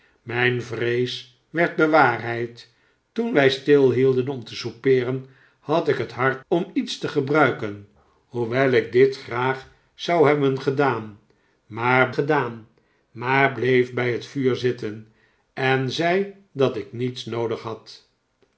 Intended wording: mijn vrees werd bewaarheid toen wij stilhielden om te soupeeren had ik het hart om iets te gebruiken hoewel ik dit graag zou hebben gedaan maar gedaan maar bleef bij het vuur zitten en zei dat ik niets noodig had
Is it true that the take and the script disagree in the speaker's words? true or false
false